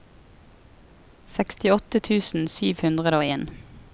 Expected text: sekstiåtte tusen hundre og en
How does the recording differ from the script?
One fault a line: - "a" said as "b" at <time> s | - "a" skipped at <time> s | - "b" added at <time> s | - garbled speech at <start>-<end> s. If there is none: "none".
- "sju" added at 2.6 s